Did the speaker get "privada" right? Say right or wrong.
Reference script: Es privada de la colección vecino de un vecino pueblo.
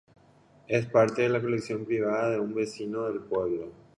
wrong